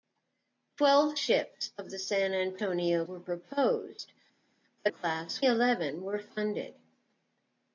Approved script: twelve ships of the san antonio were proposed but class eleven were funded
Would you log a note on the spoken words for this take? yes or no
no